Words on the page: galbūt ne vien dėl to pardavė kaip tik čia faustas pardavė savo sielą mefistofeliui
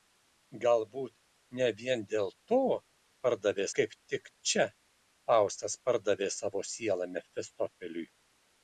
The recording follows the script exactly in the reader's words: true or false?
true